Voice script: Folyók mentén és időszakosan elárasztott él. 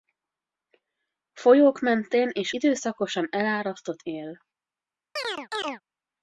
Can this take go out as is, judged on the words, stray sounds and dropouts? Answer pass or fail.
fail